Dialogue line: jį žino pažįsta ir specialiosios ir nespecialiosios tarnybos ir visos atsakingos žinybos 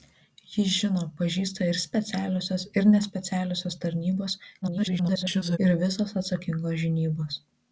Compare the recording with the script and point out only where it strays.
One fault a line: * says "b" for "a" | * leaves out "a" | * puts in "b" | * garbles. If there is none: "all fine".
* garbles